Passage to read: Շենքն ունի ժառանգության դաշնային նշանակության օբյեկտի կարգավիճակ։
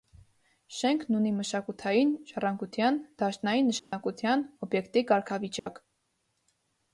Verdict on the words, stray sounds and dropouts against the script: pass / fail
fail